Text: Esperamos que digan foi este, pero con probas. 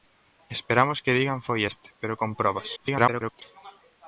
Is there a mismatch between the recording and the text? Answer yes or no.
yes